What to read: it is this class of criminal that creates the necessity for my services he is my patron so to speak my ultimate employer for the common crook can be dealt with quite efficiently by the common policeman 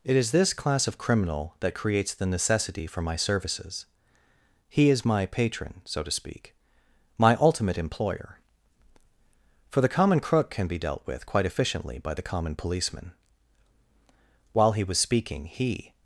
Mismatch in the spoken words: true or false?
true